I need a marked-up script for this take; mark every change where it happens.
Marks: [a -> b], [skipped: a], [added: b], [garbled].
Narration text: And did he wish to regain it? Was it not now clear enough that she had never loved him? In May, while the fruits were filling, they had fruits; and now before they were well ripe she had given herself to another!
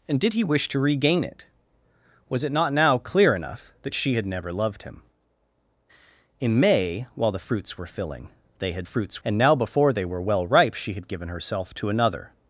And did he wish to regain it? Was it not now clear enough that she had never loved him? In May, while the fruits were filling, they had fruits; and now before they were well ripe she had given herself to another!